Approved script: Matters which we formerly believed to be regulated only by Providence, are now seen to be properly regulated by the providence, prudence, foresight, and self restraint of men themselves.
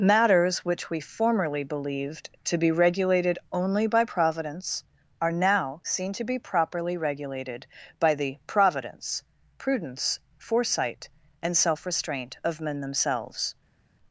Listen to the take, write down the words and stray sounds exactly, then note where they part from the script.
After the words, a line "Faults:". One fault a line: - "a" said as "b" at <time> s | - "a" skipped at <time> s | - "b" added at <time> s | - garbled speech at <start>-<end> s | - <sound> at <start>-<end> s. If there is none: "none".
Matters which we formerly believed to be regulated only by Providence, are now seen to be properly regulated by the providence, prudence, foresight, and self restraint of men themselves.
Faults:
none